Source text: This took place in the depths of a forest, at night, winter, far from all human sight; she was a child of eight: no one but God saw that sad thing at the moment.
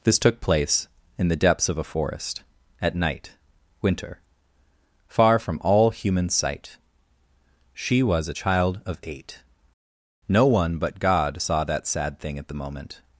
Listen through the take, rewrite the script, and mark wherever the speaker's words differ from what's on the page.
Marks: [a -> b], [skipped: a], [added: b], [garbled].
This took place in the depths of a forest, at night, winter, far from all human sight; she was a child of eight: no one but God saw that sad thing at the moment.